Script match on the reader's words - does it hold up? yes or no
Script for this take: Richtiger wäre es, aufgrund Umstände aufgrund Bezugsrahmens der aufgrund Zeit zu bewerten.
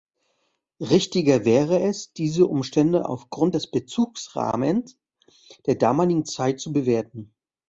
no